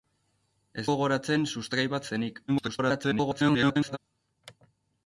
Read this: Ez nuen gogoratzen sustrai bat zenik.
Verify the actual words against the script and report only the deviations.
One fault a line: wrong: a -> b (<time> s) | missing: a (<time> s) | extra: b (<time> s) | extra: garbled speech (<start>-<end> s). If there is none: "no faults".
missing: nuen (0.8 s)
extra: garbled speech (2.5-4.0 s)